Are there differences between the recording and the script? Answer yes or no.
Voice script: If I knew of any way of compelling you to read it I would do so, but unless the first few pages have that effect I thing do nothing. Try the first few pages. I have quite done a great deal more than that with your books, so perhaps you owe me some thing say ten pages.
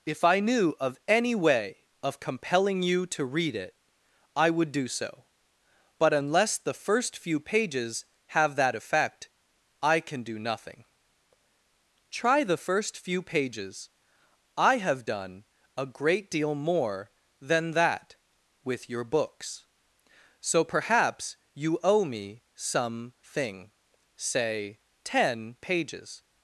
yes